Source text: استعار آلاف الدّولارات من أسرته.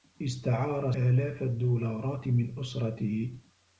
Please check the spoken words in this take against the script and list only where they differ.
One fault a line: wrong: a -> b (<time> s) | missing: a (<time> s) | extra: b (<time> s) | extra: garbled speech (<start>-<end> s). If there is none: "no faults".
no faults